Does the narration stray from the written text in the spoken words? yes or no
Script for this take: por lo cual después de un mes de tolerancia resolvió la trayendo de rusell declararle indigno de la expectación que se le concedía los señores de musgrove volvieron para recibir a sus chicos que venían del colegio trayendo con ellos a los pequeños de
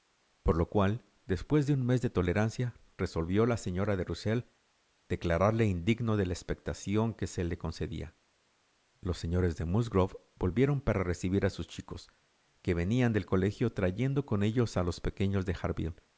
yes